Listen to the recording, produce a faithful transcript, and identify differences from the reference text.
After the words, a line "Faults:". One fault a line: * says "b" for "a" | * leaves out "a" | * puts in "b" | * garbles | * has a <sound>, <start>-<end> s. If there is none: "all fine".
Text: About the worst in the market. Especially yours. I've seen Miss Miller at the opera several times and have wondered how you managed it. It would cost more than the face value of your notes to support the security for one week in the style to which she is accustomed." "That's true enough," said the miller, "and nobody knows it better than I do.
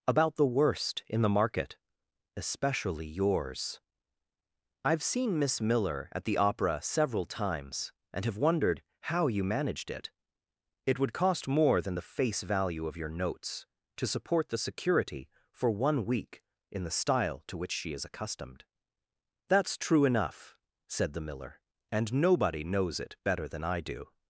About the worst in the market. Especially yours. I've seen Miss Miller at the opera several times and have wondered how you managed it. It would cost more than the face value of your notes to support the security for one week in the style to which she is accustomed." "That's true enough," said the miller, "and nobody knows it better than I do.
Faults:
all fine